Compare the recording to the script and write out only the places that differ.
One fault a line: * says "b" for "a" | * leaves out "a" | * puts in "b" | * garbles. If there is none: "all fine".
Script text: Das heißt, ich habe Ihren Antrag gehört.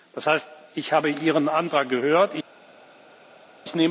all fine